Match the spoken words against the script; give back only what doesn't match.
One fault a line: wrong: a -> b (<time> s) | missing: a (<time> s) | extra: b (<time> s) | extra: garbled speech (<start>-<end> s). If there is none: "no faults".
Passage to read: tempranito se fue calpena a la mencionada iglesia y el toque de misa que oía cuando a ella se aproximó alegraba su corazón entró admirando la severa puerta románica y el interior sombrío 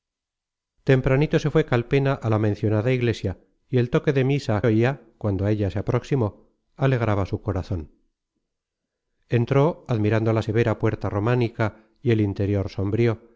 missing: que (4.7 s)